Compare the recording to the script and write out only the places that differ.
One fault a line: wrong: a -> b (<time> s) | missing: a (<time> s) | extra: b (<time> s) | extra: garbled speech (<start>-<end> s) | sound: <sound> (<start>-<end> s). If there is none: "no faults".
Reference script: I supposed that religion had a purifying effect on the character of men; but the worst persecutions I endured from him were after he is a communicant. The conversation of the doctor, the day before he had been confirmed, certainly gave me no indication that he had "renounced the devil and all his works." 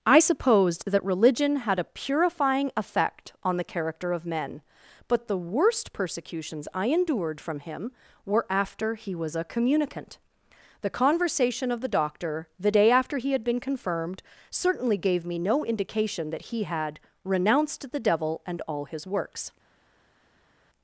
wrong: is -> was (9.2 s)
wrong: before -> after (12.9 s)